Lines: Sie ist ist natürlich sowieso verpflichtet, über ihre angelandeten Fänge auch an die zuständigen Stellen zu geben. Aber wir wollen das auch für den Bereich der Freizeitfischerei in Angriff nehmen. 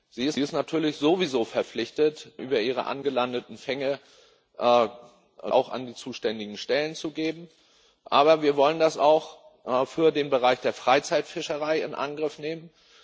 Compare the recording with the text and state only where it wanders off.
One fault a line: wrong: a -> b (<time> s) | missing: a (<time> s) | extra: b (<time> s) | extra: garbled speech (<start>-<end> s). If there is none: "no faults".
no faults